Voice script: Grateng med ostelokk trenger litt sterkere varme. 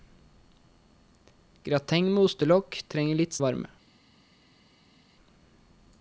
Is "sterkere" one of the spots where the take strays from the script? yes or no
yes